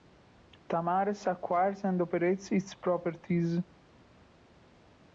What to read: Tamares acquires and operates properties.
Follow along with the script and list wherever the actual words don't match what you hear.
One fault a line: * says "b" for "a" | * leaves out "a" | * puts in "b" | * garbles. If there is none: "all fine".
* puts in "its"